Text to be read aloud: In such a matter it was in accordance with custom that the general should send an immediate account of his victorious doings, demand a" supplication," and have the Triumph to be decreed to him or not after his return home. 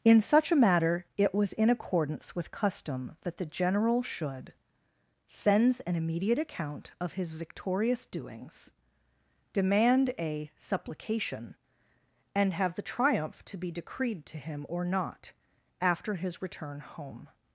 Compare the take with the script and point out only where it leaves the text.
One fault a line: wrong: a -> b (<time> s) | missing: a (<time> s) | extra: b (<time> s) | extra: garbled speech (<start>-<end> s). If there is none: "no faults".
wrong: send -> sends (5.3 s)